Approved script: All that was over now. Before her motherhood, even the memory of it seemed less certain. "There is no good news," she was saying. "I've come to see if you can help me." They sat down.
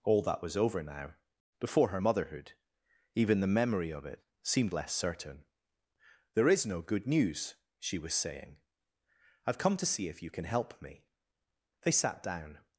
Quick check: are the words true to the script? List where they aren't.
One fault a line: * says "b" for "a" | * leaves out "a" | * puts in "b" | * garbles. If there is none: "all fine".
all fine